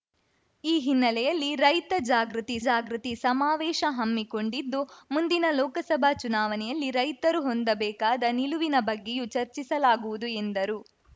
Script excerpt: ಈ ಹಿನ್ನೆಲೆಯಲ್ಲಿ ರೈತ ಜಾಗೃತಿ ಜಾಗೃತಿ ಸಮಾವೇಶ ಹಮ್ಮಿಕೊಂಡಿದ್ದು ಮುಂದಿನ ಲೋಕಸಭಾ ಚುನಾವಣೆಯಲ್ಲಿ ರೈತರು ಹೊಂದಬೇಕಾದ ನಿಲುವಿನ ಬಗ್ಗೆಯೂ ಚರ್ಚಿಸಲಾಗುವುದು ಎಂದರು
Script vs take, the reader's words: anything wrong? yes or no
no